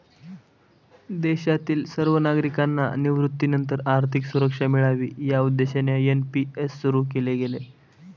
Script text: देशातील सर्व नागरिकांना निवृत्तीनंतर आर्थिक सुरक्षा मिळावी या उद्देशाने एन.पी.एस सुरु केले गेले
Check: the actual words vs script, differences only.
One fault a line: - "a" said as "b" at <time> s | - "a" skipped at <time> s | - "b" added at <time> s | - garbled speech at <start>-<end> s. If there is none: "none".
none